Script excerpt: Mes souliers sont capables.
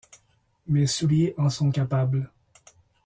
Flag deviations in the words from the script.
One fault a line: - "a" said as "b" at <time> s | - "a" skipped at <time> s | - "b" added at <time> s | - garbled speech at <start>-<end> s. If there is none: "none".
- "en" added at 1.4 s